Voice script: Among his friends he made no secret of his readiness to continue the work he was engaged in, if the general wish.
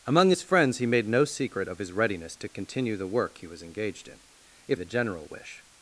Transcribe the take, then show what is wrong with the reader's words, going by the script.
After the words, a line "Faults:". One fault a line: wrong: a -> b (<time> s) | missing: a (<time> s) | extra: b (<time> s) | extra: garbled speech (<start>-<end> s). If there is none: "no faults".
Among his friends he made no secret of his readiness to continue the work he was engaged in, if the general wish.
Faults:
no faults